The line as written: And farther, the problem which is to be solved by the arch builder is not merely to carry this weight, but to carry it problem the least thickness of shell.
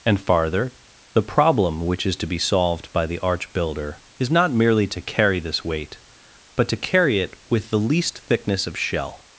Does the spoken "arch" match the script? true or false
true